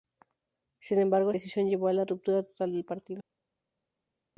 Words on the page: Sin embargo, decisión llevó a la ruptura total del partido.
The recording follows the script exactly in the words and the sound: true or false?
true